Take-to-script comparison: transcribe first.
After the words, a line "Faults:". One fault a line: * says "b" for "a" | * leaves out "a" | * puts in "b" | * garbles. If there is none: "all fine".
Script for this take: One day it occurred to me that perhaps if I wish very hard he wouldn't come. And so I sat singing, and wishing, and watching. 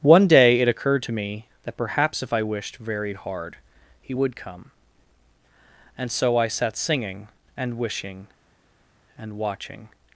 One day it occurred to me that perhaps if I wished very hard he would come. And so I sat singing, and wishing, and watching.
Faults:
* says "wished" for "wish"
* says "would" for "wouldn't"